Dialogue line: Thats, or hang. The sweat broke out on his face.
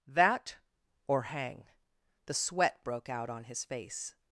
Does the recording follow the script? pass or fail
fail